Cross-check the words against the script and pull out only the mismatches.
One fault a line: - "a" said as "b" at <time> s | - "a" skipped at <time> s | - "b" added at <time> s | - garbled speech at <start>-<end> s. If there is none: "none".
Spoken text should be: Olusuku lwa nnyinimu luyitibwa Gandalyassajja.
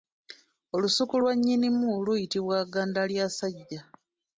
none